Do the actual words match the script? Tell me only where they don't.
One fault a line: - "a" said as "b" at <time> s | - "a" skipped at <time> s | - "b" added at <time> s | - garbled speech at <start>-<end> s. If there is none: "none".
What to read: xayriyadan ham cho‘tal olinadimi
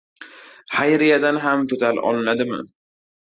none